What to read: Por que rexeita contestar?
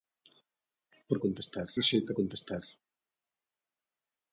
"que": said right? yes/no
no